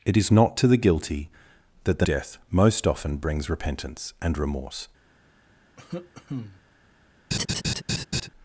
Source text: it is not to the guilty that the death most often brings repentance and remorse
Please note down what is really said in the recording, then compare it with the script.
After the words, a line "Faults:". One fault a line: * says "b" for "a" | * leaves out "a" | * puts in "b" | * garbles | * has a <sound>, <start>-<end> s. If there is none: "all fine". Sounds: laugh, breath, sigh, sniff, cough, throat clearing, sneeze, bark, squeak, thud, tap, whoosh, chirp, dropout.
it is not to the guilty that the death most often brings repentance and remorse
Faults:
* has a cough, 5.8-6.6 s
* has a laugh, 7.3-8.3 s